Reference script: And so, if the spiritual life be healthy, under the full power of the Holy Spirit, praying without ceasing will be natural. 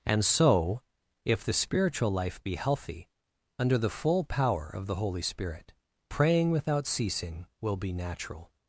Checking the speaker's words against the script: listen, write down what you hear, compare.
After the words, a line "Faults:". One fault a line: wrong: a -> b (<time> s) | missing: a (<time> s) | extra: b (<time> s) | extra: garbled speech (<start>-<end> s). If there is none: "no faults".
And so, if the spiritual life be healthy, under the full power of the Holy Spirit, praying without ceasing will be natural.
Faults:
no faults